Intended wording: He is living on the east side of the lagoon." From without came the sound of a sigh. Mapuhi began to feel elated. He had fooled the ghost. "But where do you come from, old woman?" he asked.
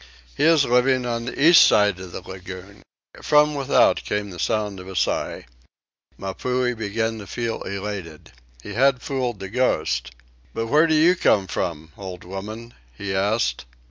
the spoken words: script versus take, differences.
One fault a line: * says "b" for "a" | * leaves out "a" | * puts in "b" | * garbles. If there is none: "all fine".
all fine